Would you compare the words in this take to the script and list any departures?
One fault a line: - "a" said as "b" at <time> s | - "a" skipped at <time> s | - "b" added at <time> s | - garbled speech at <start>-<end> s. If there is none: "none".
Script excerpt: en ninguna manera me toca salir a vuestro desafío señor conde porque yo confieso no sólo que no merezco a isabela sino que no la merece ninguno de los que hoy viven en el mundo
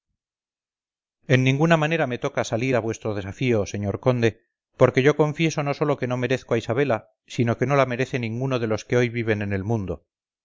none